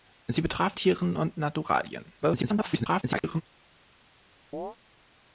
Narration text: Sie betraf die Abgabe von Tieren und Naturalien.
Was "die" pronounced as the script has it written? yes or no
no